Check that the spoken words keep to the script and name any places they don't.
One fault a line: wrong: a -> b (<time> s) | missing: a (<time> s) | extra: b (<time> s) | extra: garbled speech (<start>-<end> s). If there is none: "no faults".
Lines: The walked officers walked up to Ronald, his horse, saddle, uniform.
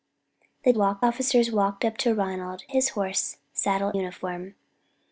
no faults